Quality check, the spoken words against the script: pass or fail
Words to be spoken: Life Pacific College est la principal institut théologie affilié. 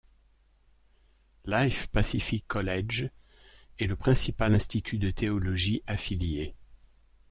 fail